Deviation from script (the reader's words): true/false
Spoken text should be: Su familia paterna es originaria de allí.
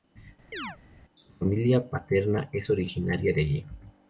false